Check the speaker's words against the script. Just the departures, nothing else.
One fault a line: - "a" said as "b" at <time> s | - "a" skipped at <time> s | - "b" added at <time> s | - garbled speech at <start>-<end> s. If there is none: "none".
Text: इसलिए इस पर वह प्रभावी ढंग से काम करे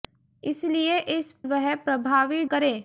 - "पर" skipped at 1.3 s
- "ढंग से काम" skipped at 2.4 s